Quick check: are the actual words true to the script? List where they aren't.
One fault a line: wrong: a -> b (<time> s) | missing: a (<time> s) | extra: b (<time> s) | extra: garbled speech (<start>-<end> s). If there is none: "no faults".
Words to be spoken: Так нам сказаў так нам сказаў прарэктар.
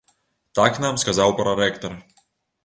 missing: так нам сказаў (1.3 s)